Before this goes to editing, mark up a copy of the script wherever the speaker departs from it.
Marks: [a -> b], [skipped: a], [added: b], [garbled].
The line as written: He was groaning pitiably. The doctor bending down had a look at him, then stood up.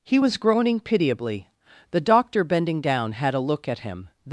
He was groaning pitiably. The doctor bending down had a look at him, [skipped: then stood up.]